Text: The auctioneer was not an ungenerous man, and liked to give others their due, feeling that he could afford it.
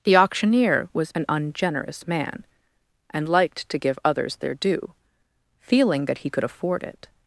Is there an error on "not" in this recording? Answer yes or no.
yes